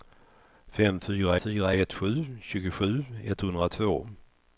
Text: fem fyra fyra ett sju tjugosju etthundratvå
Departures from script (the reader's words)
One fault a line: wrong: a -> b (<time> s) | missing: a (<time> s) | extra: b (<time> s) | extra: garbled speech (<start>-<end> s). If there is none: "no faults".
no faults